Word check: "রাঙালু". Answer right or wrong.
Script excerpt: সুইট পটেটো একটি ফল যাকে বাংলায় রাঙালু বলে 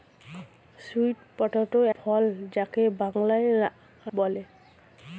wrong